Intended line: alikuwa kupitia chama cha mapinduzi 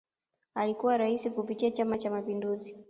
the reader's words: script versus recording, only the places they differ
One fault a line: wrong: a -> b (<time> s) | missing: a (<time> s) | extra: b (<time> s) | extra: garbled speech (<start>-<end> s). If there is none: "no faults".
extra: rais (1.0 s)